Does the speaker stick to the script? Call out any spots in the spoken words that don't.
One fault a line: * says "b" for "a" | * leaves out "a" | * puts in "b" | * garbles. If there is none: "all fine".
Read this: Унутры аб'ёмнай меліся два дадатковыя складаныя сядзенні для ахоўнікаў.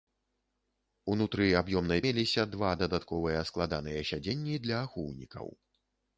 all fine